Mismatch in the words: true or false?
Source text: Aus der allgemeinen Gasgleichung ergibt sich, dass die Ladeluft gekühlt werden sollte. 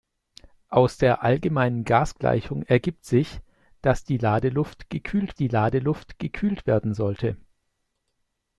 true